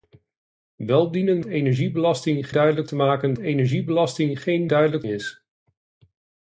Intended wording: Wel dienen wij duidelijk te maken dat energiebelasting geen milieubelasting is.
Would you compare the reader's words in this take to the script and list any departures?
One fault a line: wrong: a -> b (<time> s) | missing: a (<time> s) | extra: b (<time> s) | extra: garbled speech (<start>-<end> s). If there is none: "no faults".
wrong: wij -> energiebelasting (1.4 s)
missing: dat (3.3 s)
wrong: milieubelasting -> duidelijk (4.6 s)